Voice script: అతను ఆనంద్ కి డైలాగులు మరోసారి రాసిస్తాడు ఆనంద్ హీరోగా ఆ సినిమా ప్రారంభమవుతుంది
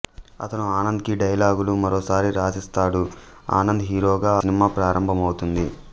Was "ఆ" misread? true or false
true